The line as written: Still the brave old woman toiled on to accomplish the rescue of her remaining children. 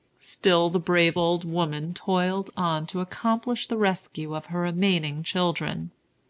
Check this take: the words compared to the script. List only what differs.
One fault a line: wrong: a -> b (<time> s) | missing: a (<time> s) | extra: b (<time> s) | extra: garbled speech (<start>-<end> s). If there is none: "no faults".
no faults